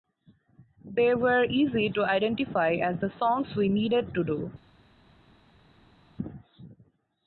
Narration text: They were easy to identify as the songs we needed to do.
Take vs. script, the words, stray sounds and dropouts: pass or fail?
pass